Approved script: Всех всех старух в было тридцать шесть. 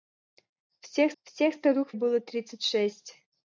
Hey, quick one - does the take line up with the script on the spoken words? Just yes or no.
yes